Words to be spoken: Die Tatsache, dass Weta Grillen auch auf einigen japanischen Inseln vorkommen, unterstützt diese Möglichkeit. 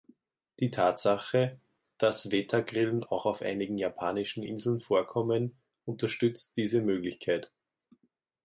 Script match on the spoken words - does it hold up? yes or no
yes